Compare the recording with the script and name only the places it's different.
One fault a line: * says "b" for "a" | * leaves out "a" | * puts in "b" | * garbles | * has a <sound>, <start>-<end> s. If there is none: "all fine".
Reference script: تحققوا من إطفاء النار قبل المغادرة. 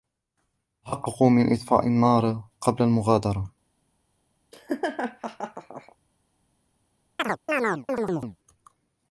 * has a laugh, 4.5-6.0 s
* has a chirp, 7.2-8.4 s